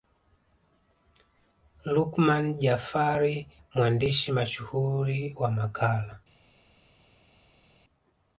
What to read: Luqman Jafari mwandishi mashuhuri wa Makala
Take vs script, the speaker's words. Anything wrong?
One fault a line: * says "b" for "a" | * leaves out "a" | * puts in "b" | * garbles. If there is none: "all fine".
all fine